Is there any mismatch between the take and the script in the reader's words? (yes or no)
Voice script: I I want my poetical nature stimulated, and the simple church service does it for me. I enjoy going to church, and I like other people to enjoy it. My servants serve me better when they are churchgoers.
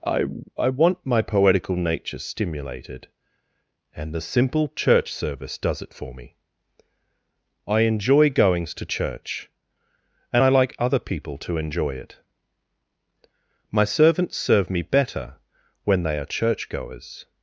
yes